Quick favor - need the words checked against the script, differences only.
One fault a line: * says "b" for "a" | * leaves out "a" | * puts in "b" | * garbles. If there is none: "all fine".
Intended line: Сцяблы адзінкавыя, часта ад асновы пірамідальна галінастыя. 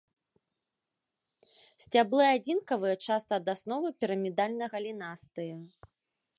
all fine